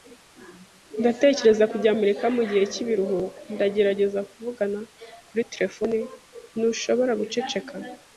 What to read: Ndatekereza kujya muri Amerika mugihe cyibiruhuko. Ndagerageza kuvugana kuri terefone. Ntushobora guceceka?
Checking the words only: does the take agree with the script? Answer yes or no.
no